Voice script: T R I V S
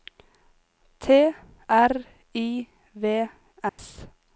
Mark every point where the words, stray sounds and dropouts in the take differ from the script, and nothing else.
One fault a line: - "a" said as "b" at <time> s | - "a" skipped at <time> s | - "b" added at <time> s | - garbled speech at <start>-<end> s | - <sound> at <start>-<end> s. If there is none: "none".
- dropout at 3.7-3.8 s